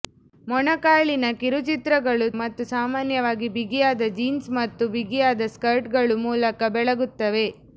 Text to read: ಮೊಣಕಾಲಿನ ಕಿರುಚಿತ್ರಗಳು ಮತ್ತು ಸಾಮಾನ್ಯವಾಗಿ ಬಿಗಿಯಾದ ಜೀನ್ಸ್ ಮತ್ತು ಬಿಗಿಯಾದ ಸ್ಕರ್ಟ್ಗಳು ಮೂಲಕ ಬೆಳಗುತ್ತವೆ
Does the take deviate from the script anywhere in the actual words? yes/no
no